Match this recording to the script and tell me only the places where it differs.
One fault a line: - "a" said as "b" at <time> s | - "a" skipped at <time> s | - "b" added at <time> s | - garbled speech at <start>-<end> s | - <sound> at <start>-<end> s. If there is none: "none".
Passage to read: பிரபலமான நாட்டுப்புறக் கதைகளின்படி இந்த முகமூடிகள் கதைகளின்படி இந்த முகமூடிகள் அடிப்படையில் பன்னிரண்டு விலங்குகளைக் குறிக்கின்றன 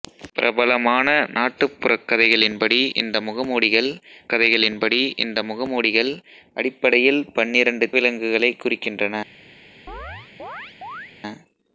- chirp at 9.9-11.1 s